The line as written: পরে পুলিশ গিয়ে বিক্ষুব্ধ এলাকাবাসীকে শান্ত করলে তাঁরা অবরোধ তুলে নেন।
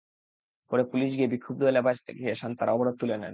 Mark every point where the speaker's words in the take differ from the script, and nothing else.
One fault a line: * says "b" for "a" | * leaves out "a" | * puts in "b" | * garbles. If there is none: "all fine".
* leaves out "করলে"